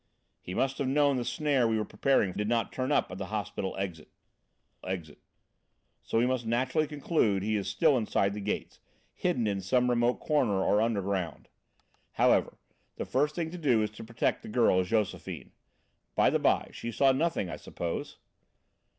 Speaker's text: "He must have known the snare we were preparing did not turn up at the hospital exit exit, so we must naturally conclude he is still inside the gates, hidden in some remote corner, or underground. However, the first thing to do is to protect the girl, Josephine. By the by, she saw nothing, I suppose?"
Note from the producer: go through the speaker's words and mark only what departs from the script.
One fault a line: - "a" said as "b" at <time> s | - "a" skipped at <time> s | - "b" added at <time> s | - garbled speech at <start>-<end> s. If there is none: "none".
none